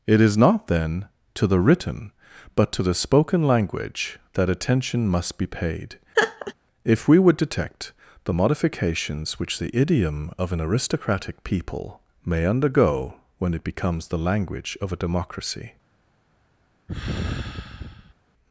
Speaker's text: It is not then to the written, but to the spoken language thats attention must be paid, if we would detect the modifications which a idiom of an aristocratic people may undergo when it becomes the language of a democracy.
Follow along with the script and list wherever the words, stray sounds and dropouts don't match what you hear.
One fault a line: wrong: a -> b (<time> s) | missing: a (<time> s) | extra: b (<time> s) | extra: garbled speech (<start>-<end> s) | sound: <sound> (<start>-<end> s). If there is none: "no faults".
wrong: thats -> that (4.3 s)
sound: laugh (6.1-6.5 s)
wrong: a -> the (9.6 s)
sound: sigh (16.9-18.1 s)